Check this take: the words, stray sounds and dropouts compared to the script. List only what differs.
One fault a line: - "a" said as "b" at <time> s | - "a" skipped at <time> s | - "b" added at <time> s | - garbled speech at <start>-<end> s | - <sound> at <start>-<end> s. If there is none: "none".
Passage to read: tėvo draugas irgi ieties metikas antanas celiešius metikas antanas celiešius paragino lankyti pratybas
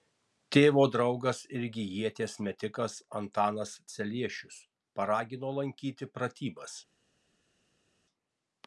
- "metikas antanas celiešius" skipped at 4.6 s